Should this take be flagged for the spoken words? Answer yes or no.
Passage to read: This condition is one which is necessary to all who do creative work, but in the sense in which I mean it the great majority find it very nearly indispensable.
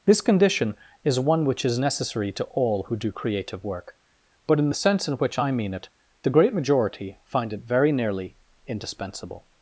no